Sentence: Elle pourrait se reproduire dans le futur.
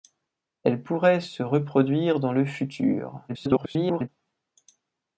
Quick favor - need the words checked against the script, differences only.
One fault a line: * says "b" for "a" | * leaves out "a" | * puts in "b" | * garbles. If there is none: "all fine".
* garbles